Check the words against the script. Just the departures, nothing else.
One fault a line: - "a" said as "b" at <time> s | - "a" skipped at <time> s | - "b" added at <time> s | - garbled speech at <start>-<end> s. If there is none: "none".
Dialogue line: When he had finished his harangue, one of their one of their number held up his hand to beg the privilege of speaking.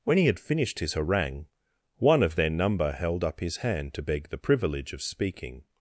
- "one of their" skipped at 2.5 s